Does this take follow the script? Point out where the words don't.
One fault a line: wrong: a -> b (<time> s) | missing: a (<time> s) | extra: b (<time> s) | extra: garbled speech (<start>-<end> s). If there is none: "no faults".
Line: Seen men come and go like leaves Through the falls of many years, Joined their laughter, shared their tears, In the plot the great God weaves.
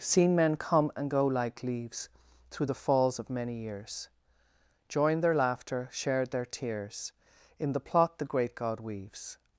no faults